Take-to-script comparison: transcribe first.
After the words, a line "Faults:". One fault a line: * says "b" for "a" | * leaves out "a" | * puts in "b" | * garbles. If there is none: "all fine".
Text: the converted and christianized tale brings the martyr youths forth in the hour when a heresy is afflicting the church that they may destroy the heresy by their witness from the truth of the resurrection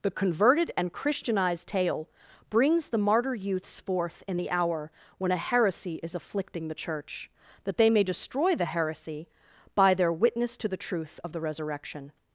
the converted and christianized tale brings the martyr youths forth in the hour when a heresy is afflicting the church that they may destroy the heresy by their witness to the truth of the resurrection
Faults:
* says "to" for "from"